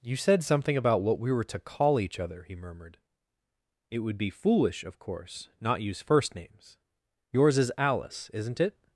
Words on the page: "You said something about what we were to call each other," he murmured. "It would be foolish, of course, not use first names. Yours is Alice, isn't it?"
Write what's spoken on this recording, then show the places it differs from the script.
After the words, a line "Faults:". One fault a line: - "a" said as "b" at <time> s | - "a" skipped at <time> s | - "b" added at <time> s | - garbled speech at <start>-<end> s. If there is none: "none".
"You said something about what we were to call each other," he murmured. "It would be foolish, of course, not use first names. Yours is Alice, isn't it?"
Faults:
none